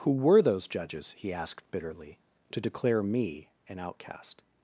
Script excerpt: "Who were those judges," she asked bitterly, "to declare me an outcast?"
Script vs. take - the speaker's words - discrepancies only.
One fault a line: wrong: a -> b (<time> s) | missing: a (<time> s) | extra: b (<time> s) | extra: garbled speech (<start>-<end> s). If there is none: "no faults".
wrong: she -> he (1.1 s)